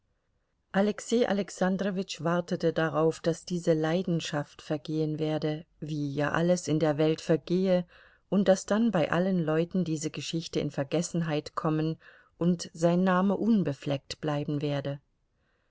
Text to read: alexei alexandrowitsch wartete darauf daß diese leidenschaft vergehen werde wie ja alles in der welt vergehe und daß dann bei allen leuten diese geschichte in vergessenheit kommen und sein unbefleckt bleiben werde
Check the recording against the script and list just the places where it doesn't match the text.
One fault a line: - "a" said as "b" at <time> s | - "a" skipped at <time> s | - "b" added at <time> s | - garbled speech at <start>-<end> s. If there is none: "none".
- "name" added at 13.0 s